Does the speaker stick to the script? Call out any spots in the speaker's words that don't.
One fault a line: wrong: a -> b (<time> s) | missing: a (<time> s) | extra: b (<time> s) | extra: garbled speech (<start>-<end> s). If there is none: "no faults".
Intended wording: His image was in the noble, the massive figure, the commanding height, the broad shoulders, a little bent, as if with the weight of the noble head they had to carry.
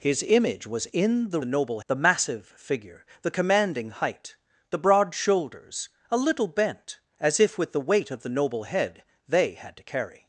no faults